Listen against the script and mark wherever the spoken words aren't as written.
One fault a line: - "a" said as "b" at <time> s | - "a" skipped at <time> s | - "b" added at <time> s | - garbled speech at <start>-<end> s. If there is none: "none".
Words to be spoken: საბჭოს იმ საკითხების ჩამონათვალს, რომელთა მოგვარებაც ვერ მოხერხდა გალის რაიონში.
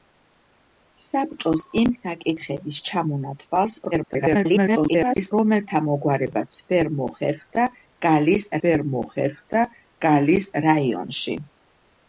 - garbled speech at 3.9-5.3 s
- "ვერ მოხერხდა გალის" added at 8.6 s